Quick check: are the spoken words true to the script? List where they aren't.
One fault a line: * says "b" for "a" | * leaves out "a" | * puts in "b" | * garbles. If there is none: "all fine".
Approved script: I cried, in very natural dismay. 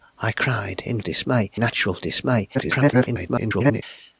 * says "dismay" for "very"
* garbles